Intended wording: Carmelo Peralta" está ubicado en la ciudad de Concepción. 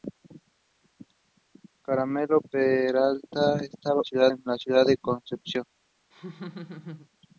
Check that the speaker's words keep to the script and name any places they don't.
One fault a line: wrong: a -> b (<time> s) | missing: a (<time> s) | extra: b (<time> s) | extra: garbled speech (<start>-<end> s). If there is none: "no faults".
wrong: ubicado -> ciudad (4.0 s)